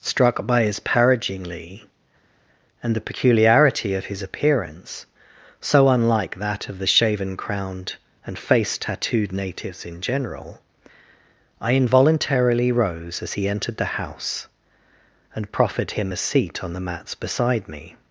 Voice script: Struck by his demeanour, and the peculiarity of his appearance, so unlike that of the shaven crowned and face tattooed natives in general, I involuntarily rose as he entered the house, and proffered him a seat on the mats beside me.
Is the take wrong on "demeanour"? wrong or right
wrong